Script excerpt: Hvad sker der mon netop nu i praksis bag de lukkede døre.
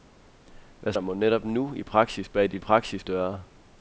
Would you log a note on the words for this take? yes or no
yes